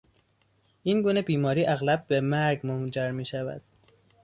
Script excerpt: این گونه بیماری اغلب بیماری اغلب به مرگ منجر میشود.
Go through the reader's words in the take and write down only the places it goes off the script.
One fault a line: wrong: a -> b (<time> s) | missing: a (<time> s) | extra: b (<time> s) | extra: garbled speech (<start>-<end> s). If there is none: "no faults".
missing: بیماری اغلب (2.1 s)